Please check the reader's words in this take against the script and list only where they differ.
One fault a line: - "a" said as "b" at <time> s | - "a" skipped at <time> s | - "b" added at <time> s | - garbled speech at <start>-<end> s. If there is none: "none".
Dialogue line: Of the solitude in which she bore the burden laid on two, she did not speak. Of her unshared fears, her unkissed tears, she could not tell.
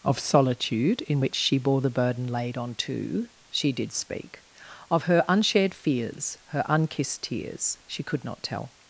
- "the" skipped at 0.2 s
- "not" skipped at 3.9 s